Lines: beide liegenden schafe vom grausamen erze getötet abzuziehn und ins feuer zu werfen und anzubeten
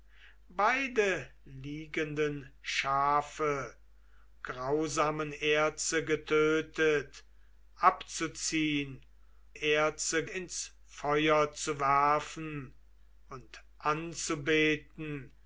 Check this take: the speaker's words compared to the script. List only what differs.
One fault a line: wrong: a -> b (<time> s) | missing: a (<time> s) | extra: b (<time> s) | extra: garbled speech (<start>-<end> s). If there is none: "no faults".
missing: vom (3.8 s)
wrong: und -> erze (9.5 s)